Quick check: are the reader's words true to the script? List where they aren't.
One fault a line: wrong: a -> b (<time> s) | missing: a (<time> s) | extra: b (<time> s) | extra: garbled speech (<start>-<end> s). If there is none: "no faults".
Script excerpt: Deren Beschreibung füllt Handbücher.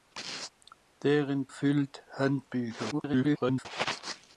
missing: Beschreibung (1.5 s)
extra: garbled speech (2.9-3.7 s)